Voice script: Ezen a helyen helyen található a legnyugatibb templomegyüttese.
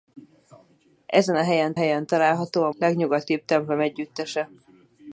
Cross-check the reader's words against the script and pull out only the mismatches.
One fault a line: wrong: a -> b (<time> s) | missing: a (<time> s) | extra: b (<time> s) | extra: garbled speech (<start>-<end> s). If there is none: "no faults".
no faults